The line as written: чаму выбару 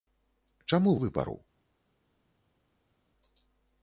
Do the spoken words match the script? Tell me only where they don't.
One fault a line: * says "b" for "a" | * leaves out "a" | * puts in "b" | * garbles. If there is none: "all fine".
all fine